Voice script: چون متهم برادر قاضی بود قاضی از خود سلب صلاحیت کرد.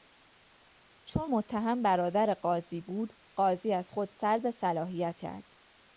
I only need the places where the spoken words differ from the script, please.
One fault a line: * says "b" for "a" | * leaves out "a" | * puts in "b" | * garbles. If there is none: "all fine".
all fine